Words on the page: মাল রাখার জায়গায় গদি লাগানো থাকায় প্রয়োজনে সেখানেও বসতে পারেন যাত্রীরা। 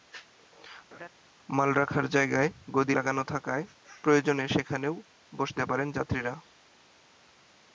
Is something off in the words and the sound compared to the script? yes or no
yes